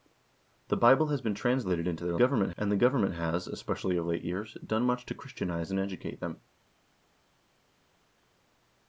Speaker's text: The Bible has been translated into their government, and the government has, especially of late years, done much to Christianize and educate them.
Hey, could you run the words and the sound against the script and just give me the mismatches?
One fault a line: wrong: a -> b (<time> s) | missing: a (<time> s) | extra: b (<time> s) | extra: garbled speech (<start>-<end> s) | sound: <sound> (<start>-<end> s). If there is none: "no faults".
no faults